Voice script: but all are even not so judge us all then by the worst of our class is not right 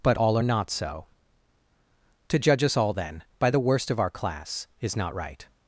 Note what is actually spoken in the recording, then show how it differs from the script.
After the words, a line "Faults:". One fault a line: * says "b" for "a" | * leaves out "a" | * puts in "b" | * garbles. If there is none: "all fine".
but all are not so to judge us all then by the worst of our class is not right
Faults:
* leaves out "even"
* puts in "to"